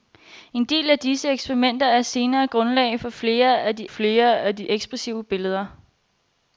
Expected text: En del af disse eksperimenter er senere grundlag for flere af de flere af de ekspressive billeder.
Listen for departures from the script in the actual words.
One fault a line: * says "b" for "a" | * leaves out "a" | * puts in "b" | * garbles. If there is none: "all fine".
all fine